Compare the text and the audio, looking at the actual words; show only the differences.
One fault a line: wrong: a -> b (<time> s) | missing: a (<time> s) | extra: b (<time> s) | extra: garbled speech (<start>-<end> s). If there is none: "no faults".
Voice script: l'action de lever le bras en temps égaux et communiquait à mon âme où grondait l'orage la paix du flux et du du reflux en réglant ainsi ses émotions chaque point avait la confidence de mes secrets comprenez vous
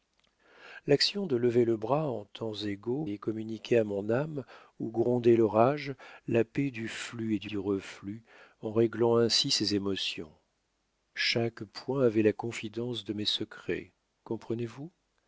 no faults